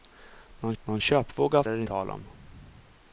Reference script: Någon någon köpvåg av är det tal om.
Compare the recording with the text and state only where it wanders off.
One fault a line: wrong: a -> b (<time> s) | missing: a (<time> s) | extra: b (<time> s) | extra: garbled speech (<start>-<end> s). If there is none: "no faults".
no faults